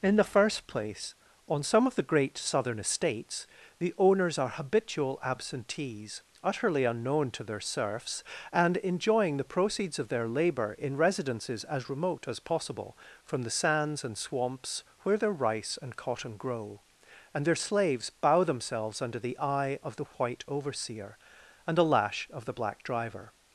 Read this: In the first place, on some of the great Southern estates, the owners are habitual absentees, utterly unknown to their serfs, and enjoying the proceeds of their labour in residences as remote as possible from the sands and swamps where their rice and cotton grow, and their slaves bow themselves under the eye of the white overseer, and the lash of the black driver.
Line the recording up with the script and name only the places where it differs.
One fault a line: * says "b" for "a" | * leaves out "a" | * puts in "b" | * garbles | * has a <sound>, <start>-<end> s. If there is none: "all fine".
all fine